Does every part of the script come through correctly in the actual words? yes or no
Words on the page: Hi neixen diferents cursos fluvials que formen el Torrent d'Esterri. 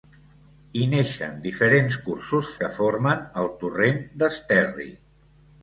no